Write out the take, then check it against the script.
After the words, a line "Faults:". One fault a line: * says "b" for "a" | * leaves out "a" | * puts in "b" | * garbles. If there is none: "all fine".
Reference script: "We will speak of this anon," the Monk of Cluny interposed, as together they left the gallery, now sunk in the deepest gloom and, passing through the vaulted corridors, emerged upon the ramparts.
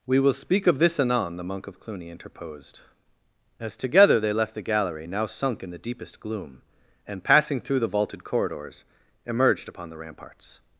"We will speak of this anon," the Monk of Cluny interposed, as together they left the gallery, now sunk in the deepest gloom and, passing through the vaulted corridors, emerged upon the ramparts.
Faults:
all fine